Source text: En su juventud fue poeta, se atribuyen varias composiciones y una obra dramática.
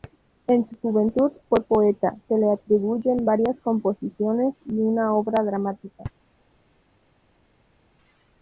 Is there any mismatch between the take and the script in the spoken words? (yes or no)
yes